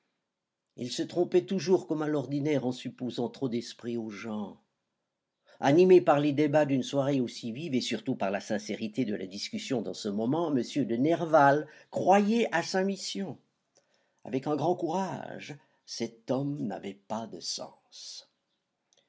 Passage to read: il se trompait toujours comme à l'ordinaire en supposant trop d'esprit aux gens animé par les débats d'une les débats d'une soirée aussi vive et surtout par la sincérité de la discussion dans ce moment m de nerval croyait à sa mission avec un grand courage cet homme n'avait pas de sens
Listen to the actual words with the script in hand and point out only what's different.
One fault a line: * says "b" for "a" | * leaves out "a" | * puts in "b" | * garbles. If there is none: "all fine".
* leaves out "les débats d'une"